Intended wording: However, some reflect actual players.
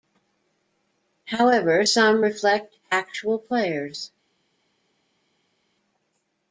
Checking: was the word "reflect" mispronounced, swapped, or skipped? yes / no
no